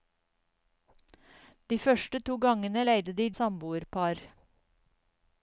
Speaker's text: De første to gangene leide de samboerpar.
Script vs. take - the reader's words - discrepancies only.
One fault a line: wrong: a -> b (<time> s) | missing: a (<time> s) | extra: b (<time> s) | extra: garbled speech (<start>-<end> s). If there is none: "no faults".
no faults